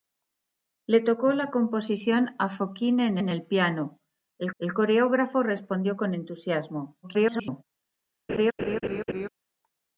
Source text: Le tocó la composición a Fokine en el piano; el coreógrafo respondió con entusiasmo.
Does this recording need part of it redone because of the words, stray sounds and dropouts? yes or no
yes